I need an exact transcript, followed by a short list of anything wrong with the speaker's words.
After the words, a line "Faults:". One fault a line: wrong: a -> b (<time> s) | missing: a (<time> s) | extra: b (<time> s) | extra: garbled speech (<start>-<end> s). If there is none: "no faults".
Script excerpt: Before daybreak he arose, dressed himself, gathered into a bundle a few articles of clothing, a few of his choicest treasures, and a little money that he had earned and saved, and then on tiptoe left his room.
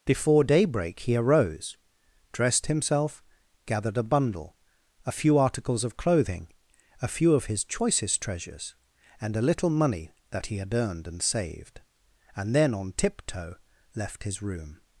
Before daybreak he arose, dressed himself, gathered a bundle a few articles of clothing, a few of his choicest treasures, and a little money that he had earned and saved, and then on tiptoe left his room.
Faults:
missing: into (4.0 s)